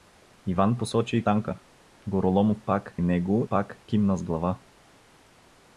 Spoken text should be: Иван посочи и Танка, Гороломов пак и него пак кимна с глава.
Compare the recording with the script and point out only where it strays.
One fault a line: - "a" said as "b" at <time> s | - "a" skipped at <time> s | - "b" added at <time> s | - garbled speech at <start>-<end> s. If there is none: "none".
none